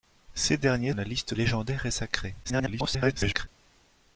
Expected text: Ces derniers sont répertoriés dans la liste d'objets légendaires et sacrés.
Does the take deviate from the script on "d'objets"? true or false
true